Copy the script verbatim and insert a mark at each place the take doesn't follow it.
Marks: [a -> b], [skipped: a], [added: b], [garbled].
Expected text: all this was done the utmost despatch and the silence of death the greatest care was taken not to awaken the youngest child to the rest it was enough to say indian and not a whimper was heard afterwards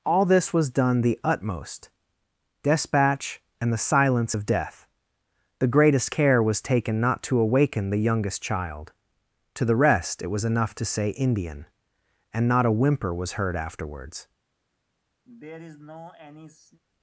all this was done the utmost despatch and the silence of death the greatest care was taken not to awaken the youngest child to the rest it was enough to say indian and not a whimper was heard afterwards